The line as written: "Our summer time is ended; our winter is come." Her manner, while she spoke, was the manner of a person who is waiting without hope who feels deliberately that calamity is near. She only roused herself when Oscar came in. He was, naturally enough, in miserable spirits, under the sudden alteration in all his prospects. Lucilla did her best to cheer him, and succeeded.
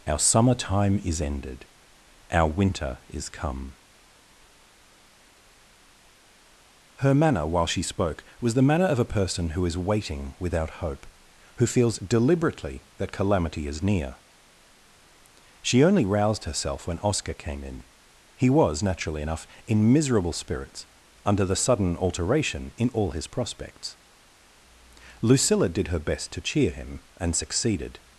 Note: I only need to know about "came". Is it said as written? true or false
true